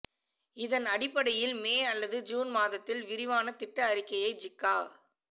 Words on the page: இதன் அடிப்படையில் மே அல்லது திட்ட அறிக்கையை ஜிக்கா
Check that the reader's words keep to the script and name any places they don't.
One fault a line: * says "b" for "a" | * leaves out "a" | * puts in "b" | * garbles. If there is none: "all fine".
* puts in "ஜூன் மாதத்தில் விரிவான"